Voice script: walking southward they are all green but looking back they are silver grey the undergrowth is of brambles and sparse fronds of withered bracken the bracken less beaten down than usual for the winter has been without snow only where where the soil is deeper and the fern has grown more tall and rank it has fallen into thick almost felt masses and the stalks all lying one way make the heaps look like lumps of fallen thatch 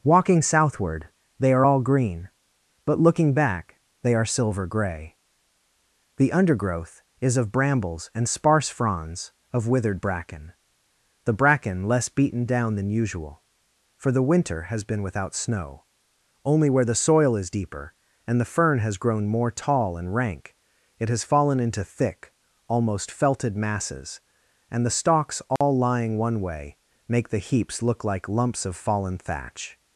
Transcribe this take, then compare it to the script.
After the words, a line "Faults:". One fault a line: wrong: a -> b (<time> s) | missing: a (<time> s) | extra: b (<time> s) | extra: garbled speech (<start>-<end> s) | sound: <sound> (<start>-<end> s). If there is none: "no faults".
walking southward they are all green but looking back they are silver grey the undergrowth is of brambles and sparse fronds of withered bracken the bracken less beaten down than usual for the winter has been without snow only where the soil is deeper and the fern has grown more tall and rank it has fallen into thick almost felted masses and the stalks all lying one way make the heaps look like lumps of fallen thatch
Faults:
missing: where (16.9 s)
wrong: felt -> felted (23.1 s)
sound: dropout (25.6-25.6 s)